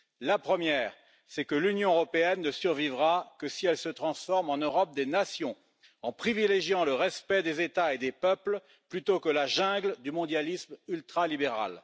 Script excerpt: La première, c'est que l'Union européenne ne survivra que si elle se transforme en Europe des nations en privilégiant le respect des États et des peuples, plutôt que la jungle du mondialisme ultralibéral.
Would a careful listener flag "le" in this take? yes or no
no